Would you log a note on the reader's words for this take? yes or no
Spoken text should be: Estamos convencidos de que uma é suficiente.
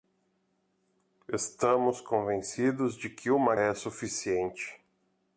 no